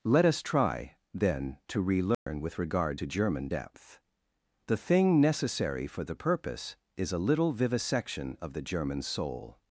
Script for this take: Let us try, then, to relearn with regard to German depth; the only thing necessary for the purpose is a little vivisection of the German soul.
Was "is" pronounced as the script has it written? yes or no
yes